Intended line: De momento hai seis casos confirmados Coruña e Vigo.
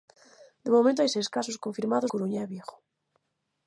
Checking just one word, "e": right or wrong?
right